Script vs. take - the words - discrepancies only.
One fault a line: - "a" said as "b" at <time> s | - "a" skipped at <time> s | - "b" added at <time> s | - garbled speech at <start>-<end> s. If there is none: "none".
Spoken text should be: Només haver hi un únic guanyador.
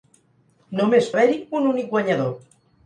none